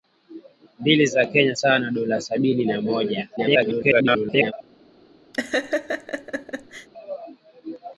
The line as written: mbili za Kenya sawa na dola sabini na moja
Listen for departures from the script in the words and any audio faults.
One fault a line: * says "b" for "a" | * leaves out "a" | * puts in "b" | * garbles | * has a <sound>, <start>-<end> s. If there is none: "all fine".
* garbles
* has a laugh, 5.3-6.9 s